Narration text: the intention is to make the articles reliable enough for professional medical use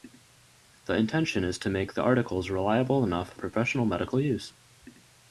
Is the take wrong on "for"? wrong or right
wrong